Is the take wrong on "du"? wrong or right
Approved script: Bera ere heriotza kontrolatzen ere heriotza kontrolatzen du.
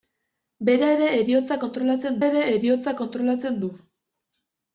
right